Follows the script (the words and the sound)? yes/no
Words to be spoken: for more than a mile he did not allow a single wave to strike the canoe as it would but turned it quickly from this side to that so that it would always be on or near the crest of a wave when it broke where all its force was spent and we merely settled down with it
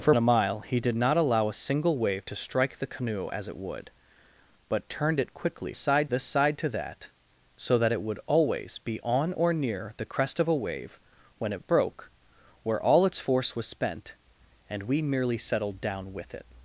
no